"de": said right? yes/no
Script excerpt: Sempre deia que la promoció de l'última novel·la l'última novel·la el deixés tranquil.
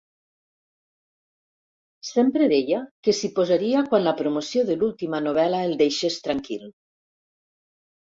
yes